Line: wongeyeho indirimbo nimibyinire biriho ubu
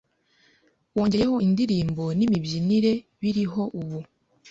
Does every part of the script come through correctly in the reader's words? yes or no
yes